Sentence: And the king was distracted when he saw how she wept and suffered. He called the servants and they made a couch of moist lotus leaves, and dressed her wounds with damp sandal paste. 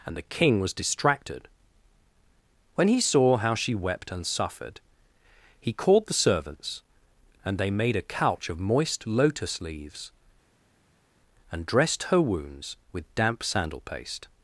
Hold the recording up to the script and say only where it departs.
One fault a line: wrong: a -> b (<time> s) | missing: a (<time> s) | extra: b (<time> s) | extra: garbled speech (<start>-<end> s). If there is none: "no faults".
no faults